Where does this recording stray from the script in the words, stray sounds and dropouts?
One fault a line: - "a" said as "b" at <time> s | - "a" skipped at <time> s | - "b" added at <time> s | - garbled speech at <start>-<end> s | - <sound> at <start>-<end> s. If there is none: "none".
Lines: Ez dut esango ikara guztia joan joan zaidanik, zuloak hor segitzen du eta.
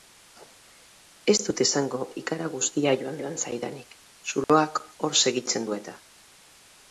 - dropout at 4.4-4.5 s